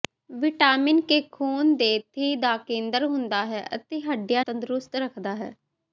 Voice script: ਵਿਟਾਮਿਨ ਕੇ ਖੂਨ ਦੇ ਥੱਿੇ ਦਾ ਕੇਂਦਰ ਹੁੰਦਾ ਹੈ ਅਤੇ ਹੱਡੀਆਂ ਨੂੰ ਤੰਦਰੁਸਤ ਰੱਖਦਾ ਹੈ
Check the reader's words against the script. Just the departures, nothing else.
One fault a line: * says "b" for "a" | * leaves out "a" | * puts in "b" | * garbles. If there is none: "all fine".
* leaves out "ਨੂੰ"